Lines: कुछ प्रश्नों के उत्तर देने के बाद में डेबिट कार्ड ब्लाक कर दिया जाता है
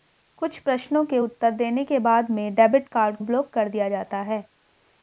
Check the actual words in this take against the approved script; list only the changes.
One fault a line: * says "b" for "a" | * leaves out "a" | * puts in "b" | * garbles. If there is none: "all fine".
all fine